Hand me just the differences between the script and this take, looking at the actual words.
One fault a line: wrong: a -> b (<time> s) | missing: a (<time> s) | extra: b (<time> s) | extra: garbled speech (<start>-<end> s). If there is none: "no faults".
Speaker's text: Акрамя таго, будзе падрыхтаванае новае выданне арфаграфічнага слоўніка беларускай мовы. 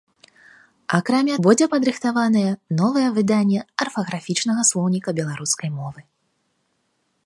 missing: таго (1.4 s)